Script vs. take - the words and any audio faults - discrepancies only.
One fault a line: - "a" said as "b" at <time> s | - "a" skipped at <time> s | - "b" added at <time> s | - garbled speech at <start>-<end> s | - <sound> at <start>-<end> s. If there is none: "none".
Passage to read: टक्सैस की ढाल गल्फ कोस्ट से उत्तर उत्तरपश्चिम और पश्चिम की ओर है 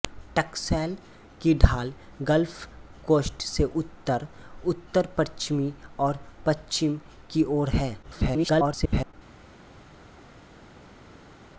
- garbled speech at 8.0-9.1 s